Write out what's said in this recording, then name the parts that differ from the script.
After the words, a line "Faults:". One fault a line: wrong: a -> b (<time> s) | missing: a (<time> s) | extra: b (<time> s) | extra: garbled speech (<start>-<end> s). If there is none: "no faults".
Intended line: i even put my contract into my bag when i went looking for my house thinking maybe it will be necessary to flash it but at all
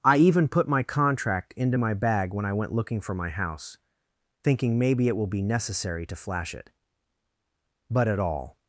i even put my contract into my bag when i went looking for my house thinking maybe it will be necessary to flash it but at all
Faults:
no faults